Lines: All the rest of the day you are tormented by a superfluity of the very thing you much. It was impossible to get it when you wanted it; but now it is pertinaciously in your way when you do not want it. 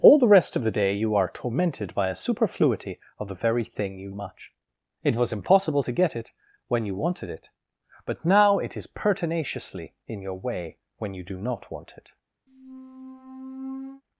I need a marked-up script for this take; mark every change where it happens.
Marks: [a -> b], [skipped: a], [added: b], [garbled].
All the rest of the day you are tormented by a superfluity of the very thing you much. It was impossible to get it when you wanted it; but now it is pertinaciously in your way when you do not want it.